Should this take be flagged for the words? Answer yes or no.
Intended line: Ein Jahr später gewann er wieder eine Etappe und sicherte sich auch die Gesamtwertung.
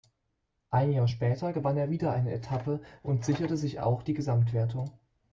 no